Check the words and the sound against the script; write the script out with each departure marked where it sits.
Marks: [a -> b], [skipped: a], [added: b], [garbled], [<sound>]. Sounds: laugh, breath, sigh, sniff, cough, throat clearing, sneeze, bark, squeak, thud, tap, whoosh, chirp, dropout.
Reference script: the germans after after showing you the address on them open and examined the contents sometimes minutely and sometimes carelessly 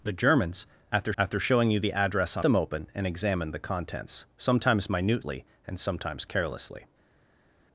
the germans after after showing you the address on them open and examined the contents sometimes minutely and sometimes carelessly